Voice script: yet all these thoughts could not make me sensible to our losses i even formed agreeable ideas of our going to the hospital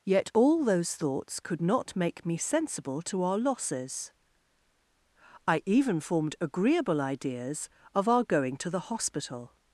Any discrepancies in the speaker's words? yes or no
yes